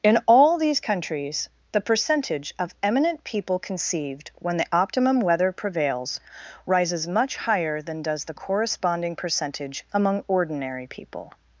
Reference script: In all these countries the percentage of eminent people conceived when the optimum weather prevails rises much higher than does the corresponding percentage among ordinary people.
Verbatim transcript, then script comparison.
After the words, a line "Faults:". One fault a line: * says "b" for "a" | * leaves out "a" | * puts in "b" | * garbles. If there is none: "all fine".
In all these countries the percentage of eminent people conceived when the optimum weather prevails rises much higher than does the corresponding percentage among ordinary people.
Faults:
all fine